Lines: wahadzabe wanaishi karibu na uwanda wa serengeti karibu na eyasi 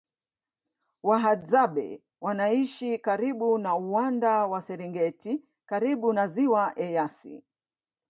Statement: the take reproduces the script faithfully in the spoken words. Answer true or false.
false